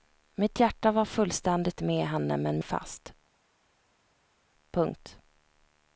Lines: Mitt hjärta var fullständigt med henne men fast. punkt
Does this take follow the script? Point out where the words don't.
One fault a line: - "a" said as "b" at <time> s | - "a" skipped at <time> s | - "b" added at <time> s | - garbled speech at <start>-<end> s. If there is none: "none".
none